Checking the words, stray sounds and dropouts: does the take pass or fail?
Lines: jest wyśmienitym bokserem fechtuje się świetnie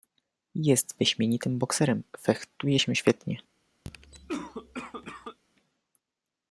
fail